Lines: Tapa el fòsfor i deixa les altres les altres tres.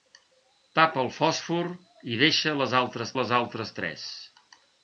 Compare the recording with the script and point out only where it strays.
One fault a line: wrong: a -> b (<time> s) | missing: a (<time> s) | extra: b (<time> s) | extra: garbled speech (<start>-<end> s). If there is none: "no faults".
no faults